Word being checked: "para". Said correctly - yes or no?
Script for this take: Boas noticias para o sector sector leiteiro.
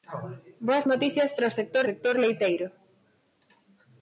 yes